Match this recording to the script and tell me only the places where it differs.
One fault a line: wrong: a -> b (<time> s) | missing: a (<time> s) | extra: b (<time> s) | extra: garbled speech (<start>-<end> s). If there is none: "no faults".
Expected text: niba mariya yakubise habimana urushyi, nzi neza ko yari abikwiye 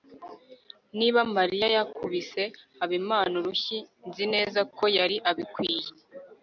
no faults